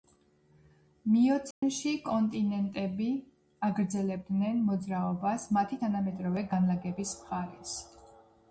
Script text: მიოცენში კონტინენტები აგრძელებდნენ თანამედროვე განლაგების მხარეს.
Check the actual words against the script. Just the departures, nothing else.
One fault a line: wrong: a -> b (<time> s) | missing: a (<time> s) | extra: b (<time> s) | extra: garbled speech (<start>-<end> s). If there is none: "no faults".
extra: მოძრაობას მათი (4.7 s)